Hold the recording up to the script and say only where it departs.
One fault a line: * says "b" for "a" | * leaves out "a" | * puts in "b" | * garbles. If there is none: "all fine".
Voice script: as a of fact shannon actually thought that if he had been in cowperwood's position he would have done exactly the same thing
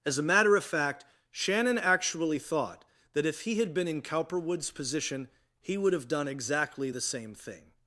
* puts in "matter"